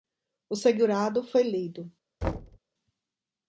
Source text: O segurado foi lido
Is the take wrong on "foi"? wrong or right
right